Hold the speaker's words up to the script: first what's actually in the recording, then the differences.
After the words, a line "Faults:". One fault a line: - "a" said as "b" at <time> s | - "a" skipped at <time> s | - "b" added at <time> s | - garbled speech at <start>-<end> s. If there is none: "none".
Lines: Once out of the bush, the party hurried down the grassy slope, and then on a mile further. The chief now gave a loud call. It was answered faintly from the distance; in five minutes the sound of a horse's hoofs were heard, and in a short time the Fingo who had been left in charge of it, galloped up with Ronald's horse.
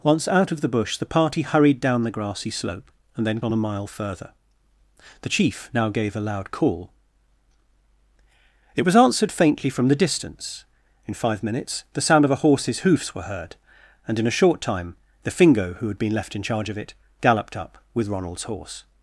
Once out of the bush, the party hurried down the grassy slope, and then on a mile further. The chief now gave a loud call. It was answered faintly from the distance; in five minutes the sound of a horse's hoofs were heard, and in a short time the Fingo who had been left in charge of it, galloped up with Ronald's horse.
Faults:
none